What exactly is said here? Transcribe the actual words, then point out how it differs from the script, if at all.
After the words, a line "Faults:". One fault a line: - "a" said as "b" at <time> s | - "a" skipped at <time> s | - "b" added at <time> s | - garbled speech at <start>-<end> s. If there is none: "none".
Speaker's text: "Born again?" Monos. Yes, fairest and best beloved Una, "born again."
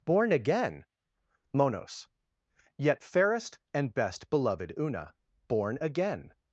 "Born again?" Monos. Yet, fairest and best beloved Una, "born again."
Faults:
- "Yes" said as "Yet" at 2.8 s